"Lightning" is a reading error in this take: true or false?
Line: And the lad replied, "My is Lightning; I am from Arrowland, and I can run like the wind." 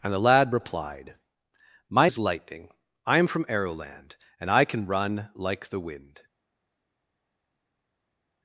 false